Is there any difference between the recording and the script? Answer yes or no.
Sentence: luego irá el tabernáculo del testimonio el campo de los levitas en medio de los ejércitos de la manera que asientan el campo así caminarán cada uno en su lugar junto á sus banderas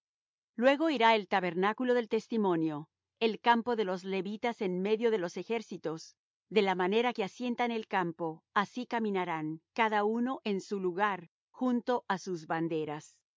no